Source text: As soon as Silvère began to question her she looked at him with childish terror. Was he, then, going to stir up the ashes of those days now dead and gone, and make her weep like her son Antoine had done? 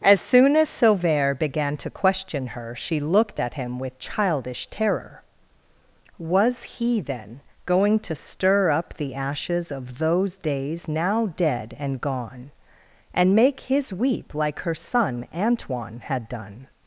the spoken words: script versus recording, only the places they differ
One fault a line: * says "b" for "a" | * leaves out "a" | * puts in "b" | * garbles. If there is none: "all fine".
* says "his" for "her"